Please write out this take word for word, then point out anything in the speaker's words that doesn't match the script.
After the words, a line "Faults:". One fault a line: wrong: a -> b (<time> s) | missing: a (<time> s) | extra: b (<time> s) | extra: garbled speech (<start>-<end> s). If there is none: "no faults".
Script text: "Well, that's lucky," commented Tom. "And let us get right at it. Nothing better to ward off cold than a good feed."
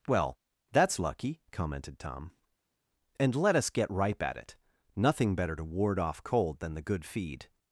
"Well, that's lucky," commented Tom. "And let us get ripe at it. Nothing better to ward off cold than the good feed."
Faults:
wrong: right -> ripe (3.9 s)
wrong: a -> the (6.7 s)